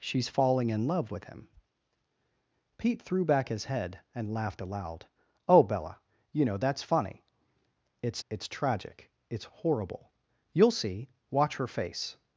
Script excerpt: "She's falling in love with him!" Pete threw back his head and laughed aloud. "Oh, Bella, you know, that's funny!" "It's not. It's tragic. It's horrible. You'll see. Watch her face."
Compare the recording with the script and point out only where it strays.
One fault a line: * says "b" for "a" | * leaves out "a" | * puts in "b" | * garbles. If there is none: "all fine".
* leaves out "not"